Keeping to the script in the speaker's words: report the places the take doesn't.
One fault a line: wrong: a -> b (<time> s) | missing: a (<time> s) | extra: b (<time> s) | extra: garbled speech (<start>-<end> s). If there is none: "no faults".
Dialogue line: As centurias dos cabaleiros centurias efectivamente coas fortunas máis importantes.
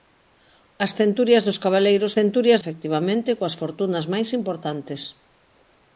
no faults